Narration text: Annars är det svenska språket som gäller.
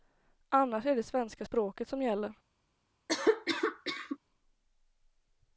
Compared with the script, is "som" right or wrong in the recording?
right